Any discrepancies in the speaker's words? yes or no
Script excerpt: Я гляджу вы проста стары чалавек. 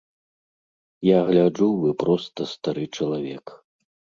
no